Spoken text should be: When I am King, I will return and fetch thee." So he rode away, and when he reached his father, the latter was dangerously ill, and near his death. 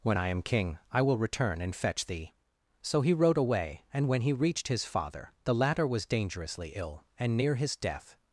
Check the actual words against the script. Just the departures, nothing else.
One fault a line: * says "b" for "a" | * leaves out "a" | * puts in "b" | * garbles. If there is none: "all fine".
all fine